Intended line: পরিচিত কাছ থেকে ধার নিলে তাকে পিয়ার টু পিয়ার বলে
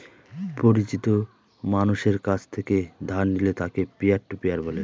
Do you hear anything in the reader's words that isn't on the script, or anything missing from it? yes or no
yes